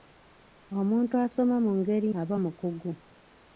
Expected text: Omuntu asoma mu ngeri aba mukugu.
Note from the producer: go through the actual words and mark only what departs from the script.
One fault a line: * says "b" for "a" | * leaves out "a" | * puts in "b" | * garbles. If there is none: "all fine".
all fine